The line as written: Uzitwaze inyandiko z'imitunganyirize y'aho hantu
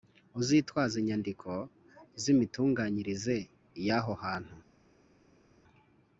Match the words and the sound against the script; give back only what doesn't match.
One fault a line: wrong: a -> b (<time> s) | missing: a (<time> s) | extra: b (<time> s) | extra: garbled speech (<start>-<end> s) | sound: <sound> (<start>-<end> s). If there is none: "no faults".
no faults